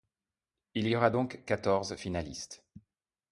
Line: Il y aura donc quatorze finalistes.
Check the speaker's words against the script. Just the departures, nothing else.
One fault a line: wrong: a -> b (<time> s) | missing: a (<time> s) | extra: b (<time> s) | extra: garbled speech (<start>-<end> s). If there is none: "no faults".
no faults